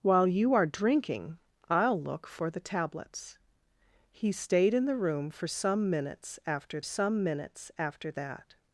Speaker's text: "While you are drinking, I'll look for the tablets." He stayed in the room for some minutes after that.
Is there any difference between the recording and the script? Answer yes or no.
yes